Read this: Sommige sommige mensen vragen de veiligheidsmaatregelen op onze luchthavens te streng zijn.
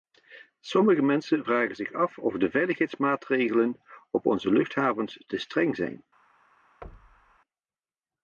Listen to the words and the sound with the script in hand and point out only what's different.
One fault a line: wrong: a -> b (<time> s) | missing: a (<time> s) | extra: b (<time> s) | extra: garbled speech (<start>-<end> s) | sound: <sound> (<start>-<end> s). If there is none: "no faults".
missing: sommige (1.0 s)
extra: zich af of (1.7 s)
sound: thud (6.8-7.4 s)